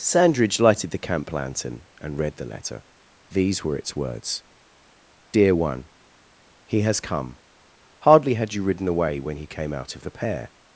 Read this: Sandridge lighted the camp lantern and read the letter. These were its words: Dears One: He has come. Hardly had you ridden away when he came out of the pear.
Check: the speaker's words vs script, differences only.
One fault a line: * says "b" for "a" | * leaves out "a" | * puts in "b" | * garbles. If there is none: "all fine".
* says "Dear" for "Dears"